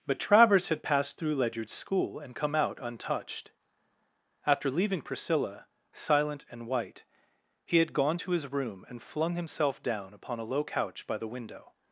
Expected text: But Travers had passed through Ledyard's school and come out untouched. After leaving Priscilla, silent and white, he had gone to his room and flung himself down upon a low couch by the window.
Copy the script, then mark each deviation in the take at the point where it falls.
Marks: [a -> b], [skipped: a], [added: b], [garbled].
But Travers had passed through Ledyard's school and come out untouched. After leaving Priscilla, silent and white, he had gone to his room and flung himself down upon a low couch by the window.